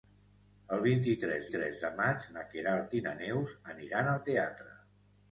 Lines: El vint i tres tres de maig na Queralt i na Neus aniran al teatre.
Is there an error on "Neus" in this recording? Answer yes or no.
no